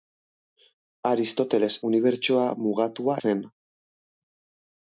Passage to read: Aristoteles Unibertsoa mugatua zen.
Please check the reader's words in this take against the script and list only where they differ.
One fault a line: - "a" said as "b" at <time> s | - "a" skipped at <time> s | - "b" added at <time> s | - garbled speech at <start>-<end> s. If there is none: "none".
none